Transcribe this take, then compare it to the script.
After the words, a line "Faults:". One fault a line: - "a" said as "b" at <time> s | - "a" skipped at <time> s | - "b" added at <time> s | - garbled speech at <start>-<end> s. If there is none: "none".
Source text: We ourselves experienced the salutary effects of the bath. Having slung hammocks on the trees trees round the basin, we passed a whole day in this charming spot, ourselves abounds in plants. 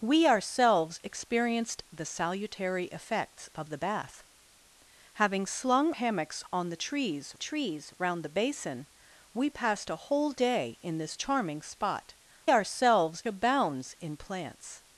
We ourselves experienced the salutary effects of the bath. Having slung hammocks on the trees trees round the basin, we passed a whole day in this charming spot, ourselves abounds in plants.
Faults:
none